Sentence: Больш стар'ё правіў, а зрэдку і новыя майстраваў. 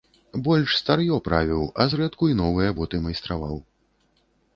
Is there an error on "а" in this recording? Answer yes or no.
no